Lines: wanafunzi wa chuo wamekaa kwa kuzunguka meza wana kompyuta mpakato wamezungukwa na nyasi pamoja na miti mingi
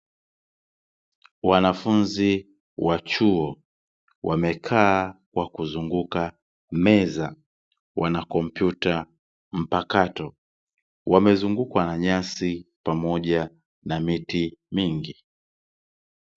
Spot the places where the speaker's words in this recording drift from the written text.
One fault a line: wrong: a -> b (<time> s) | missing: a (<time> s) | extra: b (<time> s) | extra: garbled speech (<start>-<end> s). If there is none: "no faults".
no faults